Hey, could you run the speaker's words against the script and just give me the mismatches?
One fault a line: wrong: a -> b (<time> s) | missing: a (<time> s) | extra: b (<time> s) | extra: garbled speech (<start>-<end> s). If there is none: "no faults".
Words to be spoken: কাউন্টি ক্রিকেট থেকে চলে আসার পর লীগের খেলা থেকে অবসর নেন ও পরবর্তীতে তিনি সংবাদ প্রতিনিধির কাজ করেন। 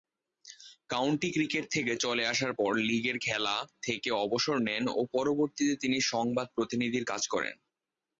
no faults